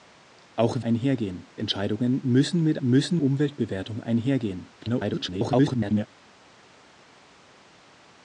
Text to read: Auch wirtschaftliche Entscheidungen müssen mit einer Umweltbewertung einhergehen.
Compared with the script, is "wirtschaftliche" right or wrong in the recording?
wrong